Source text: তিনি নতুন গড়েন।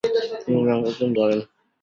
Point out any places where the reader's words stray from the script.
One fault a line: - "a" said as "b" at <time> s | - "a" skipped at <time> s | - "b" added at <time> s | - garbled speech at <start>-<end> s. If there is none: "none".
none